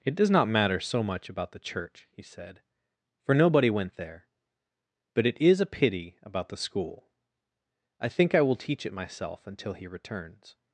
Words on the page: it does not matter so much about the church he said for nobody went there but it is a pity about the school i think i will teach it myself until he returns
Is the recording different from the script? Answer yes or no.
no